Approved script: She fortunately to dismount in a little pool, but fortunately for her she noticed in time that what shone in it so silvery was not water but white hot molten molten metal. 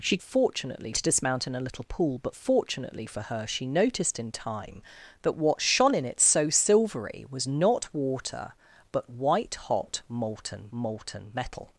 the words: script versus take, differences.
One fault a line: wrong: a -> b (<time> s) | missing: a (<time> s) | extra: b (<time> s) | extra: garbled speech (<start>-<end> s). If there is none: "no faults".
no faults